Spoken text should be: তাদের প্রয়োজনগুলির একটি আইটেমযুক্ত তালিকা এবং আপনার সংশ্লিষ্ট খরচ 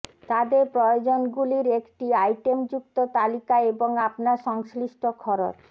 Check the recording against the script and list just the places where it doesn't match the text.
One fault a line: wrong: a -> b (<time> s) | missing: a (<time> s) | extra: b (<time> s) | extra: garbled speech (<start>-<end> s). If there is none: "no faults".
no faults